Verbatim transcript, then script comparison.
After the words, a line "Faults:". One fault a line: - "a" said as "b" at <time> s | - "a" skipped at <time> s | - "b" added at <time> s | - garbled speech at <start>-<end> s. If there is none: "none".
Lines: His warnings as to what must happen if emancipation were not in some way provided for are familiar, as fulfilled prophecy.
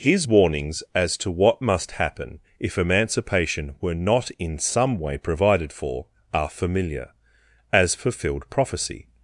His warnings as to what must happen if emancipation were not in some way provided for are familiar, as fulfilled prophecy.
Faults:
none